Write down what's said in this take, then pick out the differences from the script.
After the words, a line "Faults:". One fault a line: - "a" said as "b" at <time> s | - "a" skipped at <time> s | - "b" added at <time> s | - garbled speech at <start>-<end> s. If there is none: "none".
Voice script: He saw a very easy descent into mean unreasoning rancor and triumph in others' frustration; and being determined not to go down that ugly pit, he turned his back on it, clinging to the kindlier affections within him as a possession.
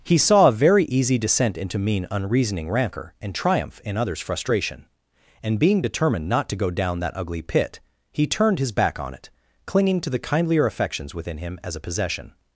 He saw a very easy descent into mean unreasoning rancor and triumph in others' frustration; and being determined not to go down that ugly pit, he turned his back on it, clinging to the kindlier affections within him as a possession.
Faults:
none